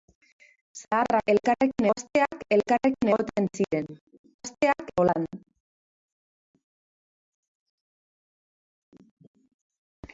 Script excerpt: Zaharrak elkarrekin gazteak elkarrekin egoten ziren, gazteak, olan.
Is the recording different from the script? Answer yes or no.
no